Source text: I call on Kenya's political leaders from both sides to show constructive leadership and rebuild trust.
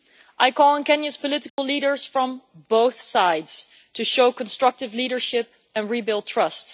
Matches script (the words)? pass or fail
pass